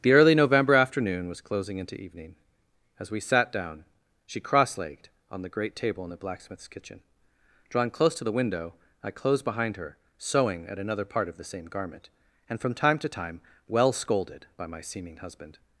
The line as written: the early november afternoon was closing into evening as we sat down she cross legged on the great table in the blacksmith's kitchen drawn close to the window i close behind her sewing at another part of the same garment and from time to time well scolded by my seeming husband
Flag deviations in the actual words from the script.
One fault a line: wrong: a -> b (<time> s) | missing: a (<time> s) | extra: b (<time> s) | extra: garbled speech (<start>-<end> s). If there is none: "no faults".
wrong: close -> closed (9.1 s)